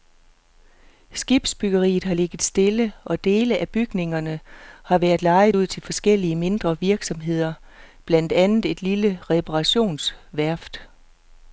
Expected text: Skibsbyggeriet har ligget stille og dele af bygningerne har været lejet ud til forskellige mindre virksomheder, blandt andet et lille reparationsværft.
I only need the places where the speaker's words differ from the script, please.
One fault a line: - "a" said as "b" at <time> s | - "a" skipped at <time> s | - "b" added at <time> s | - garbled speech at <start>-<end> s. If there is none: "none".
none